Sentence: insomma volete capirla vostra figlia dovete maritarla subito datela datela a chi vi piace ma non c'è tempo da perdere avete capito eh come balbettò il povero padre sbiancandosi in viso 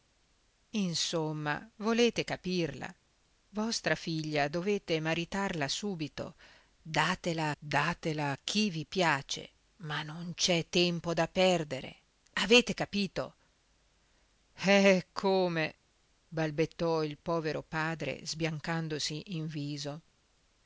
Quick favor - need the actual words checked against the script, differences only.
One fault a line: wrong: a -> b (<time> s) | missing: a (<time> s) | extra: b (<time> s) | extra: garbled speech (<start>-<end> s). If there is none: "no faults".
no faults